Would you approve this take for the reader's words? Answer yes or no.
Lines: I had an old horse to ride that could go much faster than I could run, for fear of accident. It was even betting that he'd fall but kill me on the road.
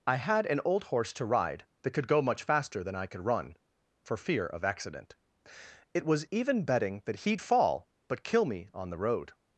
yes